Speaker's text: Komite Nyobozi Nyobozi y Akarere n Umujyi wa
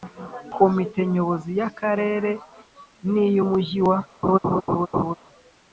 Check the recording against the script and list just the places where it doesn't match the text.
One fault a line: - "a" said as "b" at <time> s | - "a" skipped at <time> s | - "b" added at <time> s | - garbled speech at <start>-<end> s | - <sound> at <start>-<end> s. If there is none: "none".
- "Nyobozi" skipped at 1.5 s
- "iy" added at 3.2 s
- laugh at 4.2-5.1 s